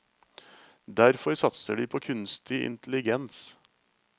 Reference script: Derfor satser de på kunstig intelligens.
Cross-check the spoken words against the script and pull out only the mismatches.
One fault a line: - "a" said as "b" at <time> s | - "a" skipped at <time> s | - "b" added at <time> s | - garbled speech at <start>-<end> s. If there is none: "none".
none